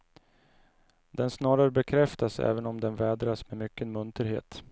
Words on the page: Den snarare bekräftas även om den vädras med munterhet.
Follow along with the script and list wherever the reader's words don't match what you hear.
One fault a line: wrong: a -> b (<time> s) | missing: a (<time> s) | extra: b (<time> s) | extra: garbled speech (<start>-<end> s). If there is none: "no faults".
extra: mycken (3.5 s)